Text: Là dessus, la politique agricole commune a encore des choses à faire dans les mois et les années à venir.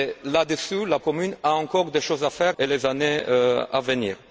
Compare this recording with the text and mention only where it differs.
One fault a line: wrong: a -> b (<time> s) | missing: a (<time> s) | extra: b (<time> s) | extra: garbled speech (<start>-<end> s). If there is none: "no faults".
missing: politique agricole (1.0 s)
missing: dans les mois (2.5 s)